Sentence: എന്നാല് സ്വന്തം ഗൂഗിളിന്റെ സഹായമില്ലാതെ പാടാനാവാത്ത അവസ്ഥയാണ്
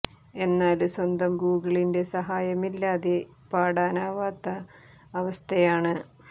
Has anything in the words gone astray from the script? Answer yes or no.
no